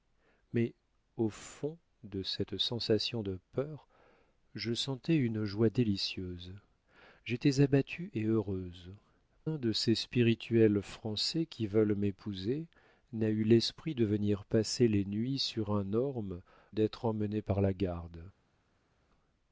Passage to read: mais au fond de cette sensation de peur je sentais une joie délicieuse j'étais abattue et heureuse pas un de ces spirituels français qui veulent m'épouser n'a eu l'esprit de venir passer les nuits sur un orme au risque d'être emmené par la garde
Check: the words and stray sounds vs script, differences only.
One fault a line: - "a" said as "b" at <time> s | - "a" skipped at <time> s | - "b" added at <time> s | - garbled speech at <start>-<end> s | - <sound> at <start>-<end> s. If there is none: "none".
- "pas" skipped at 8.9 s
- "au risque" skipped at 16.4 s